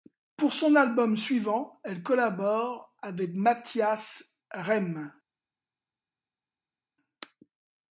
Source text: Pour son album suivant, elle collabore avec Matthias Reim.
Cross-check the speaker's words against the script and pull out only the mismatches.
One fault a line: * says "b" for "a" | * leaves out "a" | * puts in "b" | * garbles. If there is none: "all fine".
all fine